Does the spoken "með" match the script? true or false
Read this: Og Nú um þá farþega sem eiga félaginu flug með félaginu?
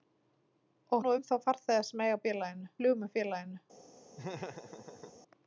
true